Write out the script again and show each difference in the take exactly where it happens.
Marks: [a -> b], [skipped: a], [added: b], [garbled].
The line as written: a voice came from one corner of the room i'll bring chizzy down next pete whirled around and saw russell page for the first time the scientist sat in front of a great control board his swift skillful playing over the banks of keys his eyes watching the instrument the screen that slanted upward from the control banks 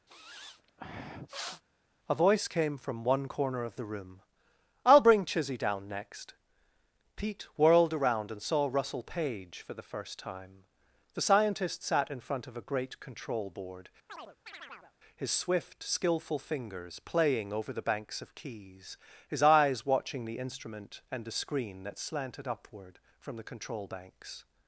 a voice came from one corner of the room i'll bring chizzy down next pete whirled around and saw russell page for the first time the scientist sat in front of a great control board his swift skillful [added: fingers] playing over the banks of keys his eyes watching the instrument [added: and] the screen that slanted upward from the control banks